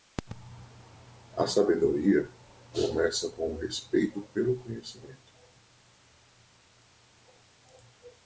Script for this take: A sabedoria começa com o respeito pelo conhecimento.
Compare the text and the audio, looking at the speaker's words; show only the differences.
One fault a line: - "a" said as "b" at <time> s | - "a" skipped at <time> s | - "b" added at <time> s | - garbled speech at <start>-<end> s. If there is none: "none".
none